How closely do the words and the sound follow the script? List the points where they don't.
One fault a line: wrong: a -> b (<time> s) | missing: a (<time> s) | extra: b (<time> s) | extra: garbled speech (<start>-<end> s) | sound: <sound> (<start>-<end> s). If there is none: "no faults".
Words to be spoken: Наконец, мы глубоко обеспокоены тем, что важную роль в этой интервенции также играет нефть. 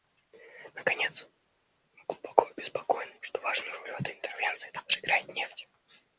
missing: тем (3.1 s)